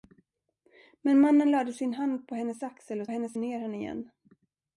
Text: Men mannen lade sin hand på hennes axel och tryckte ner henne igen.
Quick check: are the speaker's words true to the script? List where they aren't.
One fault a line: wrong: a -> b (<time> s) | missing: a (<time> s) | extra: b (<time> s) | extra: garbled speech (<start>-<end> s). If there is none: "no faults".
wrong: tryckte -> hennes (3.1 s)